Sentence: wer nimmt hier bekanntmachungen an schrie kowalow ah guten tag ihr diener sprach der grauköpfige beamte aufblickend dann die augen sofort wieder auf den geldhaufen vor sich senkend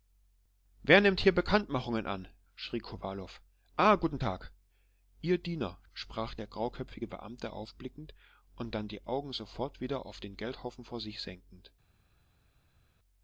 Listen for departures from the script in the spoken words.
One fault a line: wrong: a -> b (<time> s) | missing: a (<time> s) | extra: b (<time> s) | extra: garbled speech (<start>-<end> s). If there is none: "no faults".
extra: und (8.6 s)